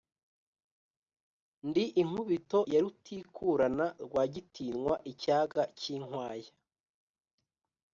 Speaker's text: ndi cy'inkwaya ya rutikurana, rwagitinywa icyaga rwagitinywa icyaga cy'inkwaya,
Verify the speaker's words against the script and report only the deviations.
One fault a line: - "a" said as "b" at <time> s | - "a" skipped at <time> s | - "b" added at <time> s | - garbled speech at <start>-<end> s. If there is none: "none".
- "cy'inkwaya" said as "inkubito" at 2.0 s
- "rwagitinywa icyaga" skipped at 5.6 s